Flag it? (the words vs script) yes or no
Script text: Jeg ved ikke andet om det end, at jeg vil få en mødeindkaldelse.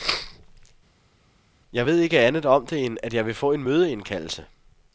no